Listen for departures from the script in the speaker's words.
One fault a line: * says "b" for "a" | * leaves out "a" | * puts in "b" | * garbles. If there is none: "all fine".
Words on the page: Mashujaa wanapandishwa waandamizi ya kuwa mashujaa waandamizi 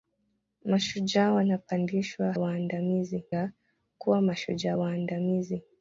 all fine